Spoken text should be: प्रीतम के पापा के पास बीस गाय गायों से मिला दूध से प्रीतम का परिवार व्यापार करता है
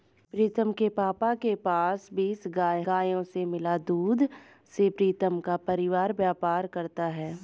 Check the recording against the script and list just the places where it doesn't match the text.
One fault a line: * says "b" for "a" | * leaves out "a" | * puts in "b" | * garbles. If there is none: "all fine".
all fine